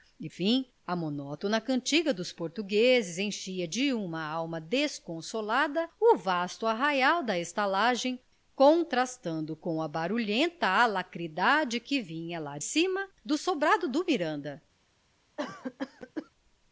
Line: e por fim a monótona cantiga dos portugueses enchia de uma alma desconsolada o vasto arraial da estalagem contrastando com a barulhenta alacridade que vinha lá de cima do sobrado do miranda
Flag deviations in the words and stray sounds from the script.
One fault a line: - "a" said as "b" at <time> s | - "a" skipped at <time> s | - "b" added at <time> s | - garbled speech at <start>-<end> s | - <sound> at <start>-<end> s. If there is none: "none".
- "por" skipped at 0.3 s
- "de" skipped at 12.6 s
- cough at 15.4-16.3 s